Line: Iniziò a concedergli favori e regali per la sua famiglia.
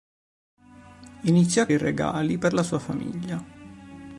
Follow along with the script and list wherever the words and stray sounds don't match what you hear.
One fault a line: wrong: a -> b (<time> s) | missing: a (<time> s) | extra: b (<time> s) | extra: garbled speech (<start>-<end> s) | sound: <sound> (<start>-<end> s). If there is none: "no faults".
missing: concedergli favori (1.7 s)